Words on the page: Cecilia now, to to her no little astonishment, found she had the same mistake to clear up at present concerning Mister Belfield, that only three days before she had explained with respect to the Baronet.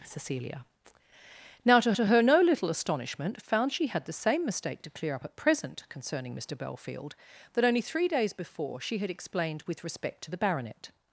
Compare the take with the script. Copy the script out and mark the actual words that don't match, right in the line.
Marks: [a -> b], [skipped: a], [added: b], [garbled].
Cecilia now, to to her no little astonishment, found she had the same mistake to clear up at present concerning Mister Belfield, that only three days before she had explained with respect to the Baronet.